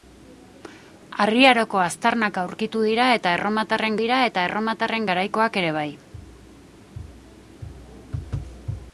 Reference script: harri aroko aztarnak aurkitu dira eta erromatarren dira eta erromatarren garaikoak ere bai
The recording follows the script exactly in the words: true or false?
true